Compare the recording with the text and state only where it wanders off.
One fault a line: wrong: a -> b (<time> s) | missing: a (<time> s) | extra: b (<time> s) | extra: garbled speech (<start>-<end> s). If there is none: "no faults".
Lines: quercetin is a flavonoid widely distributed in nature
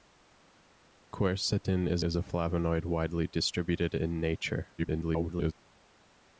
extra: is (2.0 s)
extra: garbled speech (4.8-5.5 s)